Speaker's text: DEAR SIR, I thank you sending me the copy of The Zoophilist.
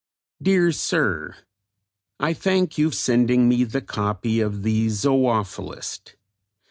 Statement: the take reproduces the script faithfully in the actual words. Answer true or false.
true